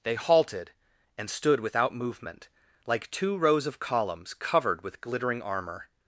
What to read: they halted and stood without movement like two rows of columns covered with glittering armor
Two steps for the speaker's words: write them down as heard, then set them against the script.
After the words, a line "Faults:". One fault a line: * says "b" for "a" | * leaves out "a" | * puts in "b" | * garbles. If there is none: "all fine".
they halted and stood without movement like two rows of columns covered with glittering armor
Faults:
all fine